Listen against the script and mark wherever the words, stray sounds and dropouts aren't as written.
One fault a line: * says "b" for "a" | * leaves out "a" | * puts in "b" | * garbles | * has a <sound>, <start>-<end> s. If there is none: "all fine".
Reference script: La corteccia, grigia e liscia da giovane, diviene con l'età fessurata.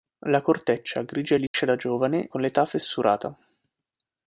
* has a dropout, 1.5-1.5 s
* leaves out "diviene"